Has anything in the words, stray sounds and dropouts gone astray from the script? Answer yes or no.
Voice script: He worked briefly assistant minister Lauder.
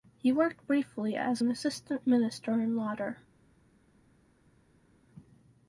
yes